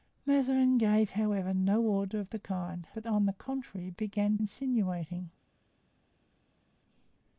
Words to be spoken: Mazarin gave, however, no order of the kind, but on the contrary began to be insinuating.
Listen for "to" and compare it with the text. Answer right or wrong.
wrong